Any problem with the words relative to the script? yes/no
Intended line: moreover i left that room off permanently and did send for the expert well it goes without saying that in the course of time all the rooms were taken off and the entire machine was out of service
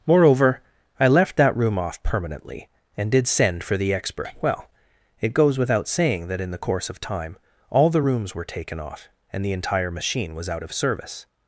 no